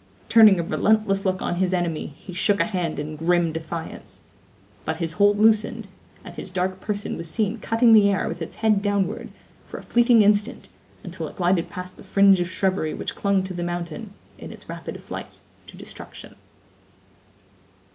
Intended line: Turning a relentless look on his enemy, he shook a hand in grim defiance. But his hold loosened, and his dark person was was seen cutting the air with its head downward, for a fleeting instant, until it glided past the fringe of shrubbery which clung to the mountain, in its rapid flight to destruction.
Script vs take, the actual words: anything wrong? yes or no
yes